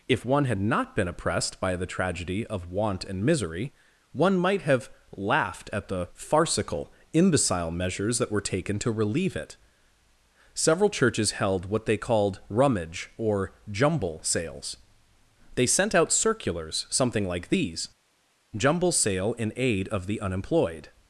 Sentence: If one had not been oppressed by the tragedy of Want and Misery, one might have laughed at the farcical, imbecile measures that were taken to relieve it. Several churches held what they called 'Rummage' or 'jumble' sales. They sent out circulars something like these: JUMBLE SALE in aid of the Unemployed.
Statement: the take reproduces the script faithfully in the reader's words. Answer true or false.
true